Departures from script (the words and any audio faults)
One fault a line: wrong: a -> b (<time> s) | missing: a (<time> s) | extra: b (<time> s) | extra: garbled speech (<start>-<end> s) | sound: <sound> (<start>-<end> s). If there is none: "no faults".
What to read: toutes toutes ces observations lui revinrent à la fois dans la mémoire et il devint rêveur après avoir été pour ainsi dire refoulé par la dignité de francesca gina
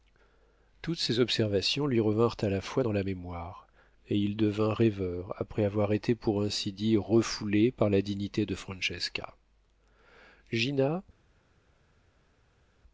missing: toutes (1.0 s)